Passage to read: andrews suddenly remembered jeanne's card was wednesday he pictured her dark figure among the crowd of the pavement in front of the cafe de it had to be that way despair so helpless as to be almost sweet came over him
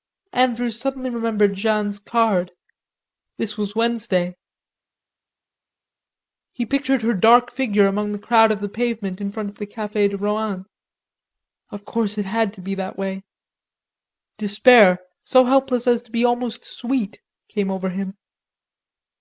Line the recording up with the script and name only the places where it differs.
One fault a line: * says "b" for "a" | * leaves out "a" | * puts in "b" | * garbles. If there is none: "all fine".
* puts in "this"
* puts in "rohan of course"